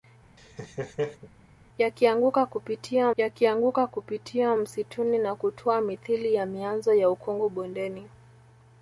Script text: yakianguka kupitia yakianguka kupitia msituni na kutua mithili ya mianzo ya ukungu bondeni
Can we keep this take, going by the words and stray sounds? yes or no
no